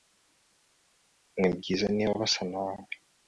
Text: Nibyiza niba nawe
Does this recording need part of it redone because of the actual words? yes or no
yes